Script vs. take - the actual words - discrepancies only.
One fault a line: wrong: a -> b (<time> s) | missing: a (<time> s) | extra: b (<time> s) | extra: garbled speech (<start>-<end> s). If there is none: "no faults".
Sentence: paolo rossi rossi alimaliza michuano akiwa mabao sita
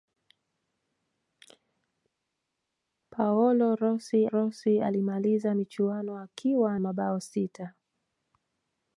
no faults